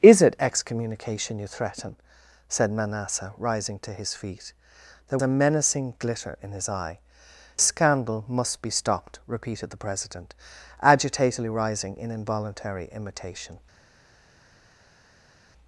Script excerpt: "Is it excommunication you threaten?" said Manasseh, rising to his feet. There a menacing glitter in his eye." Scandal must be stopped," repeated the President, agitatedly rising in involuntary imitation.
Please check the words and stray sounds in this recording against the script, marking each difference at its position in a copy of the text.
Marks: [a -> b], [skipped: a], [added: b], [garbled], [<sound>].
"Is it excommunication you threaten?" said Manasseh, rising to his feet. There a menacing glitter in his eye." Scandal must be stopped," repeated the President, agitatedly rising in involuntary imitation.